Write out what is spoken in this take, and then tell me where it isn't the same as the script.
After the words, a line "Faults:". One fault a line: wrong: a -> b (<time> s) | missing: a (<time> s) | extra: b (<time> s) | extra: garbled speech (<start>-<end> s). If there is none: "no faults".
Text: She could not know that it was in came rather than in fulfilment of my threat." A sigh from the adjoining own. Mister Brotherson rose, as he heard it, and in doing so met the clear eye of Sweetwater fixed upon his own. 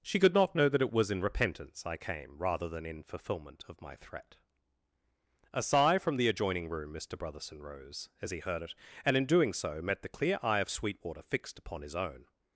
She could not know that it was in repentance I came rather than in fulfilment of my threat." A sigh from the adjoining room. Mister Brotherson rose, as he heard it, and in doing so met the clear eye of Sweetwater fixed upon his own.
Faults:
extra: repentance I (1.2 s)
wrong: own -> room (6.7 s)